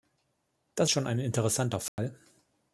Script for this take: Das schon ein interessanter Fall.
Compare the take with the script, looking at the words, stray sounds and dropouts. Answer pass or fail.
fail